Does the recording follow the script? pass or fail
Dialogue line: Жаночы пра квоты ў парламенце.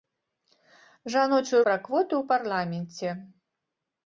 pass